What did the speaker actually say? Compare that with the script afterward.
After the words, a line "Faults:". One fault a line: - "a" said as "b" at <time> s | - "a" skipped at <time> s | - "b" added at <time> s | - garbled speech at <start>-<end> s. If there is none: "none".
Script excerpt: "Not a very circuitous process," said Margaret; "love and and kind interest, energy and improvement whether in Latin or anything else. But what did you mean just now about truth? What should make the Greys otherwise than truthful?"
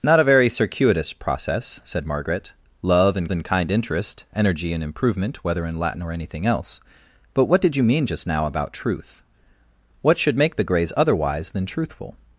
"Not a very circuitous process," said Margaret; "love and and kind interest, energy and improvement whether in Latin or anything else. But what did you mean just now about truth? What should make the Greys otherwise than truthful?"
Faults:
none